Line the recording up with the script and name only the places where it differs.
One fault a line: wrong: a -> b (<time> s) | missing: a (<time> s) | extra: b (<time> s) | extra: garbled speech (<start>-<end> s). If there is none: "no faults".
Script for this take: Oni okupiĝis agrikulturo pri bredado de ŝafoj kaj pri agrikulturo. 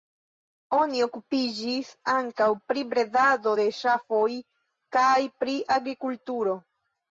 wrong: agrikulturo -> ankaŭ (2.1 s)